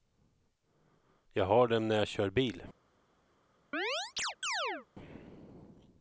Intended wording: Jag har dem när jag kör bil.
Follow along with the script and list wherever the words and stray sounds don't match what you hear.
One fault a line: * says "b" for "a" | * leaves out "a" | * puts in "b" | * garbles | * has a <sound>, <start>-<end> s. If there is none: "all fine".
* has a chirp, 3.7-4.9 s